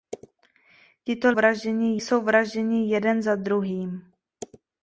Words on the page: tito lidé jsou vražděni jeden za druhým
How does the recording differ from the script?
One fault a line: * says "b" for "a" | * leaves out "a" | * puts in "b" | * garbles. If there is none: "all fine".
* says "vražděni" for "lidé"